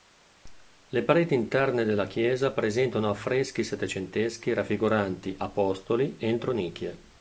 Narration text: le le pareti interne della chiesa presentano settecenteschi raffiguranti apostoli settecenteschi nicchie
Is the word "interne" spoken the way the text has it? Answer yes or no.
yes